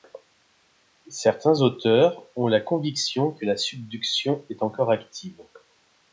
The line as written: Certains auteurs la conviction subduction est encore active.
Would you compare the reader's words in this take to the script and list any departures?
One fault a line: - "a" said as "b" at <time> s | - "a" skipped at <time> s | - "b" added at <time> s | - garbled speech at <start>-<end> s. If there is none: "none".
- "ont" added at 2.4 s
- "que la" added at 3.3 s